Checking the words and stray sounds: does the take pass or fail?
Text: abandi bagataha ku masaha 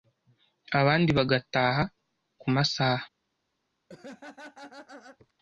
fail